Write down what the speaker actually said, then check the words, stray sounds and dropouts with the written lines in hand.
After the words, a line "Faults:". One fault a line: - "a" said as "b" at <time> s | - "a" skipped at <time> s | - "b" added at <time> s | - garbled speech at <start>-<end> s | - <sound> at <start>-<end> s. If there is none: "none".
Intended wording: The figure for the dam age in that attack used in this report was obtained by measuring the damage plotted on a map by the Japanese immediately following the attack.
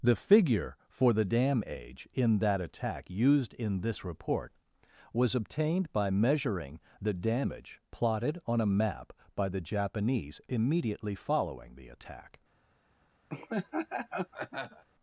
The figure for the dam age in that attack used in this report was obtained by measuring the damage plotted on a map by the Japanese immediately following the attack.
Faults:
- laugh at 13.3-14.8 s